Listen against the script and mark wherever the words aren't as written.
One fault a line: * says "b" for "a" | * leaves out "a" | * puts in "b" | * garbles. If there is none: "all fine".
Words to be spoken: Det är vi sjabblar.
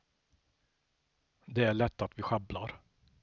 * puts in "lätt att"